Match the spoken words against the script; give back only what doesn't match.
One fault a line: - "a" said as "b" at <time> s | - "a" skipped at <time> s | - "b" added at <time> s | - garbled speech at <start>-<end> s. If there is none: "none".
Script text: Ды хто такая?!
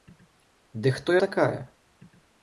none